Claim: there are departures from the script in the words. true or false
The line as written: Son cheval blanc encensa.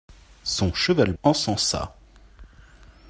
true